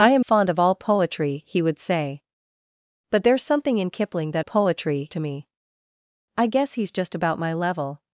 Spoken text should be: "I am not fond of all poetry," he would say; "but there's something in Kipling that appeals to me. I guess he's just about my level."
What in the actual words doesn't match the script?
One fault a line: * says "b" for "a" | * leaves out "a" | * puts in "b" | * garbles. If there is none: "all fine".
* leaves out "not"
* says "poetry" for "appeals"